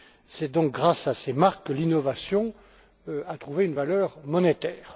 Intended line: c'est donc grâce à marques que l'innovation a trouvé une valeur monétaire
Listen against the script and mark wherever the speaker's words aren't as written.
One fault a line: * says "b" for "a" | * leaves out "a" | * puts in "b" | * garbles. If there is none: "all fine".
* puts in "ces"